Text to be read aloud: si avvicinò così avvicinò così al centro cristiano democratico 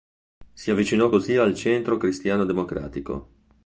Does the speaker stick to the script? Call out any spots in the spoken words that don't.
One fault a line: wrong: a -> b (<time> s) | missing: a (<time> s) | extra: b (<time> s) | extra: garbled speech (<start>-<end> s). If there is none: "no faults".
missing: avvicinò così (1.4 s)